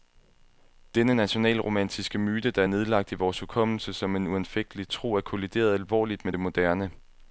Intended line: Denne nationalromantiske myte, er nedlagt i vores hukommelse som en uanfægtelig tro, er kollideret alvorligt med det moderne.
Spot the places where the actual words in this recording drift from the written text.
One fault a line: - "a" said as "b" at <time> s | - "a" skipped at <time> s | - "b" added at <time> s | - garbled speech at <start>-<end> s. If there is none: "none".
- "der" added at 2.5 s